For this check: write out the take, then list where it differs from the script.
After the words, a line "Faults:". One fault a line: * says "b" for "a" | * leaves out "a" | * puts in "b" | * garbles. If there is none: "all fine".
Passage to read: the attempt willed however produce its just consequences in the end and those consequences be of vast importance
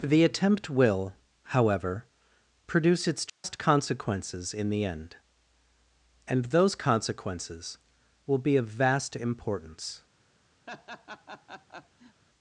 the attempt will however produce its just consequences in the end and those consequences will be of vast importance
Faults:
* says "will" for "willed"
* puts in "will"